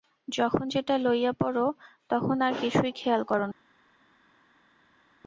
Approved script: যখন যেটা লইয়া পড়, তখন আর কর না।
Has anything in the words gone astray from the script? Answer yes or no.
yes